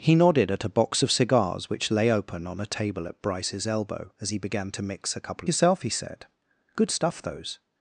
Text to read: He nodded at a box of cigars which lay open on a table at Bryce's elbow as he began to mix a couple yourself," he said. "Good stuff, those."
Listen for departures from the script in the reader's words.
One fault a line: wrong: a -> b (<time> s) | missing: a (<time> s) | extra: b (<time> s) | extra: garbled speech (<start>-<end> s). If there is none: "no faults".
no faults